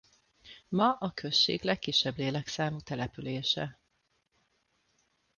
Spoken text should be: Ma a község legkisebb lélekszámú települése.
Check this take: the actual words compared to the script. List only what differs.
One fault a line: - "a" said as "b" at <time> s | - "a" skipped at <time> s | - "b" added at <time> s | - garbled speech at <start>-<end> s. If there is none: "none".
none